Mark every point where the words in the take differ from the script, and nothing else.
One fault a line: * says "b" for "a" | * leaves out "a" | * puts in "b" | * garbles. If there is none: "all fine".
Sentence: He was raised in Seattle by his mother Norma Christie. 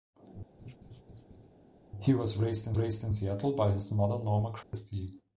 * puts in "raised in"